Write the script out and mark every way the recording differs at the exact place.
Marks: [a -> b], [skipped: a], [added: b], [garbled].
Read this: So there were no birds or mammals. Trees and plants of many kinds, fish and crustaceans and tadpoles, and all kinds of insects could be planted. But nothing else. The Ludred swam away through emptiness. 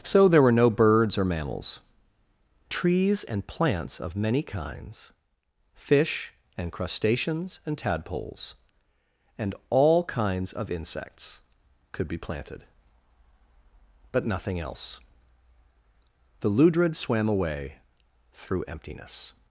So there were no birds or mammals. Trees and plants of many kinds, fish and crustaceans and tadpoles, and all kinds of insects could be planted. But nothing else. The Ludred swam away through emptiness.